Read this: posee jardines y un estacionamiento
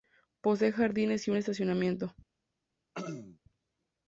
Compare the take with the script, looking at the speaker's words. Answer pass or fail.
pass